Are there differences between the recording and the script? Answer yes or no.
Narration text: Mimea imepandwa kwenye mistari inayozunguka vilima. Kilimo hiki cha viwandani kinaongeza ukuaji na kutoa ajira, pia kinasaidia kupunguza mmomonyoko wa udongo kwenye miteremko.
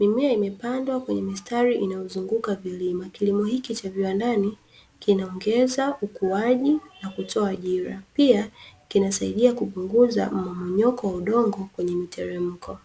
no